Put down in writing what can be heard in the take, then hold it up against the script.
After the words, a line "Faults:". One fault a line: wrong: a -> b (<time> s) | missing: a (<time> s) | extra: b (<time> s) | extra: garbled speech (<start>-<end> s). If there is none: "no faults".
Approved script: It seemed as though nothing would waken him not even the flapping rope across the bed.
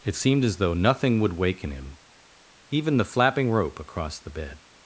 It seemed as though nothing would waken him even the flapping rope across the bed.
Faults:
missing: not (2.0 s)